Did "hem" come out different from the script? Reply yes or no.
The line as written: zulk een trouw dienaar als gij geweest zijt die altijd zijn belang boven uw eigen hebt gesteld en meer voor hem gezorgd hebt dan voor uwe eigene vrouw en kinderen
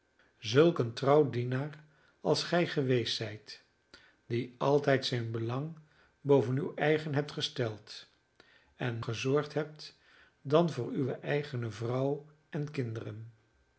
yes